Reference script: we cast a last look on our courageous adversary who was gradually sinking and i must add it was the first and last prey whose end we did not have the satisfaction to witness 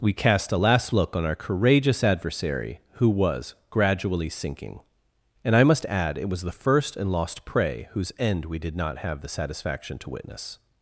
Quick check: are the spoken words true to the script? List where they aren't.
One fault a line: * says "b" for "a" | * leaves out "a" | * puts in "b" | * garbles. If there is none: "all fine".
* says "lost" for "last"